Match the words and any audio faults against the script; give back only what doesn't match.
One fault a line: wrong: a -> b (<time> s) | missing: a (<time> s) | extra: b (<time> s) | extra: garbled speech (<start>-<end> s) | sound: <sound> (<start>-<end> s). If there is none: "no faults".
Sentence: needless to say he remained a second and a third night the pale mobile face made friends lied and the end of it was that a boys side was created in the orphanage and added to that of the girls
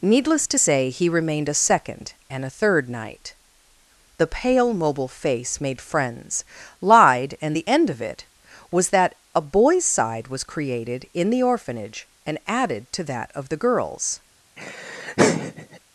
sound: laugh (14.6-15.8 s)